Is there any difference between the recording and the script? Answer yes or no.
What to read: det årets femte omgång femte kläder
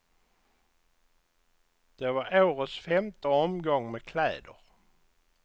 yes